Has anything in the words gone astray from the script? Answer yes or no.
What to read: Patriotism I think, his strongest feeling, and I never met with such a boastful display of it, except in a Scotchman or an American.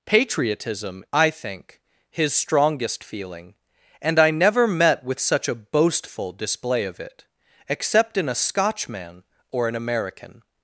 no